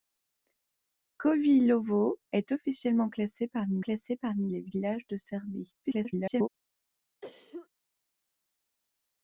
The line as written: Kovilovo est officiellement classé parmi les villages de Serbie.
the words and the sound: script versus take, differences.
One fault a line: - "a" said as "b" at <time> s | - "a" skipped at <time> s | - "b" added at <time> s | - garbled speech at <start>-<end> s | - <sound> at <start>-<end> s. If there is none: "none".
- "classé parmi" added at 3.8 s
- garbled speech at 5.8-6.5 s
- cough at 7.2-7.7 s